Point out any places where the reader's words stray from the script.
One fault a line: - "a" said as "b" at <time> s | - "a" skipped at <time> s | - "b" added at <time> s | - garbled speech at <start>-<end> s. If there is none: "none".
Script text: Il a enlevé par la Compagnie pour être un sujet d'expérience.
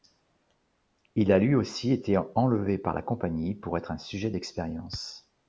- "lui aussi été" added at 1.4 s